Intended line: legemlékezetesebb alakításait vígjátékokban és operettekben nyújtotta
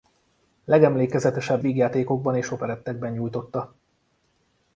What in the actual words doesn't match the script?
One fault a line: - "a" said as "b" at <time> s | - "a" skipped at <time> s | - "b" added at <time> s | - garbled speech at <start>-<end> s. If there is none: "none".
- "alakításait" skipped at 1.6 s